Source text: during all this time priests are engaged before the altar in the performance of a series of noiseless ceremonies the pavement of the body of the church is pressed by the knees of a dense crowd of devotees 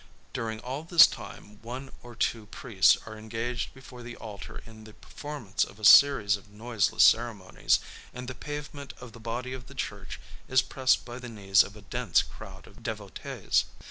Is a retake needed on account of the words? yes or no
yes